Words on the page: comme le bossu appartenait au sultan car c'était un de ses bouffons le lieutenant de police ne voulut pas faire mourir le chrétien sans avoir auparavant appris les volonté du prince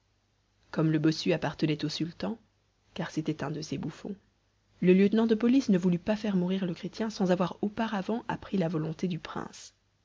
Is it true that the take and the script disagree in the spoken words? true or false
true